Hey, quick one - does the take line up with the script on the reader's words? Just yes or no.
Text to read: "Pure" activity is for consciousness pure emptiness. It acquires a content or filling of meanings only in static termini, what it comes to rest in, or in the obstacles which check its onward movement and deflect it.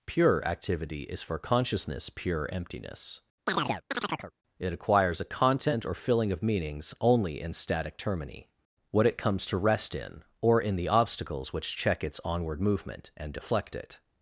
yes